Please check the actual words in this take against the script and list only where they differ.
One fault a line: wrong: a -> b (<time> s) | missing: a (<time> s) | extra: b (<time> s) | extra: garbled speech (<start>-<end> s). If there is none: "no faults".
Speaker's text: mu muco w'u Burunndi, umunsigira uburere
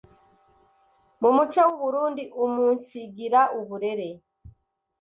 no faults